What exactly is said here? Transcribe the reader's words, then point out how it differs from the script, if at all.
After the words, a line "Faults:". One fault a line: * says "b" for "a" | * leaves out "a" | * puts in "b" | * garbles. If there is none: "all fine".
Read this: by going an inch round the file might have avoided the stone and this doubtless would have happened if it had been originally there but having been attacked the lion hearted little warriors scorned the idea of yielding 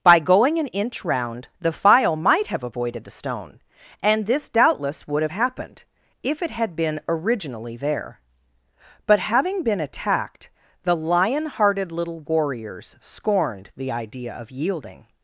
by going an inch round the file might have avoided the stone and this doubtless would have happened if it had been originally there but having been attacked the lion hearted little warriors scorned the idea of yielding
Faults:
all fine